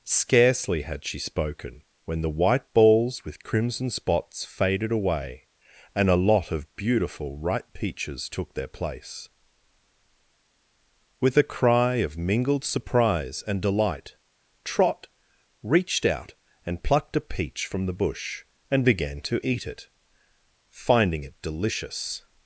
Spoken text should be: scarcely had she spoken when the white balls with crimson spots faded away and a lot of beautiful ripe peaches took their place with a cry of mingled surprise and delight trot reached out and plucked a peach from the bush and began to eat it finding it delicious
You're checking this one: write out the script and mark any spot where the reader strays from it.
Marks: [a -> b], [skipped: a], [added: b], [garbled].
scarcely had she spoken when the white balls with crimson spots faded away and a lot of beautiful ripe peaches took their place with a cry of mingled surprise and delight trot reached out and plucked a peach from the bush and began to eat it finding it delicious